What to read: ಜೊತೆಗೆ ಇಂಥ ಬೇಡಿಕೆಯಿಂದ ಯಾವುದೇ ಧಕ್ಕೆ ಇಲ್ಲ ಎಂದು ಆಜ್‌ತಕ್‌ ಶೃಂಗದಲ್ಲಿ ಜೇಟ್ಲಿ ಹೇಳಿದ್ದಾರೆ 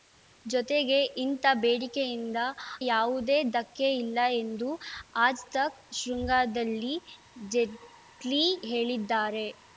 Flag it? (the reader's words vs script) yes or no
no